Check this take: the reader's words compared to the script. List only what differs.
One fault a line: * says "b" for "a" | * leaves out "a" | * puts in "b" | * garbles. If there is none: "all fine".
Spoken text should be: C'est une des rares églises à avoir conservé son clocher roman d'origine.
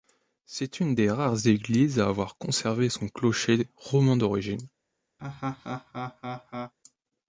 all fine